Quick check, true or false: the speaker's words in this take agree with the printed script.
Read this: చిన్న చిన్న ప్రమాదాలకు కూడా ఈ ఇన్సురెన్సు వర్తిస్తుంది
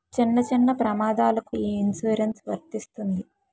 false